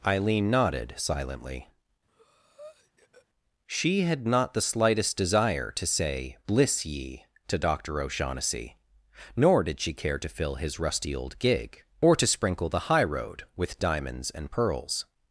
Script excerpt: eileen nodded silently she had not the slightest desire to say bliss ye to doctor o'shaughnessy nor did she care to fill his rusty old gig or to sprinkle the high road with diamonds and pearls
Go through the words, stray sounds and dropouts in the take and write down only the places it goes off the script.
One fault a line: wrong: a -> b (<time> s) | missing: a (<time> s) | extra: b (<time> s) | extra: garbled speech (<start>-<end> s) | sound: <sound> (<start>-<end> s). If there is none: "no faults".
sound: breath (2.1-3.3 s)